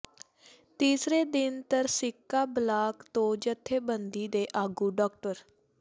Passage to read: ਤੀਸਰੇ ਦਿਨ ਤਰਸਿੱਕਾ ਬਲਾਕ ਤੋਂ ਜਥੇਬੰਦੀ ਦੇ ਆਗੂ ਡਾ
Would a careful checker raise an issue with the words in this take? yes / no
no